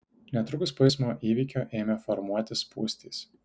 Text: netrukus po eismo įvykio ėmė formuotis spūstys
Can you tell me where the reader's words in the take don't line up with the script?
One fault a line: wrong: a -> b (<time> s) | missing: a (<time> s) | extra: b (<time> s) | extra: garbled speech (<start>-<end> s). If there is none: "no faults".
no faults